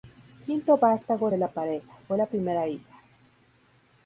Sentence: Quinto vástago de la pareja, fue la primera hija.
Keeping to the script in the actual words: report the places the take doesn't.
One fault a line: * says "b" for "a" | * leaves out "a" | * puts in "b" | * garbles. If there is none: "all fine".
all fine